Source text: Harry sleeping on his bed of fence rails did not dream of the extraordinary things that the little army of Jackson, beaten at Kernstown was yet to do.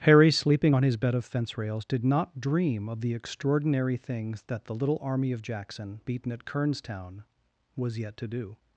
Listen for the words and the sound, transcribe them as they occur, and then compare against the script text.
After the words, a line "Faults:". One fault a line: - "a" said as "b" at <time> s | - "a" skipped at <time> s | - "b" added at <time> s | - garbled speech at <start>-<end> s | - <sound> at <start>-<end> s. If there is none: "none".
Harry sleeping on his bed of fence rails did not dream of the extraordinary things that the little army of Jackson, beaten at Kernstown was yet to do.
Faults:
none